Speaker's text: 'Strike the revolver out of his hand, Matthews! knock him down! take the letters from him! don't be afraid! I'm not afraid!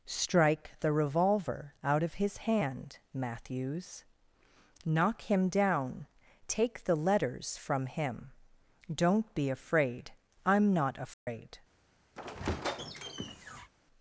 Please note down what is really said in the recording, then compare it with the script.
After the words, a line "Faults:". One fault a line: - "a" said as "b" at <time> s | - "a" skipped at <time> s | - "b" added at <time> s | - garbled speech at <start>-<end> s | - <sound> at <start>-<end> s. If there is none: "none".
'Strike the revolver out of his hand, Matthews! knock him down! take the letters from him! don't be afraid! I'm not afraid!
Faults:
- dropout at 11.1-11.3 s
- squeak at 12.2-13.7 s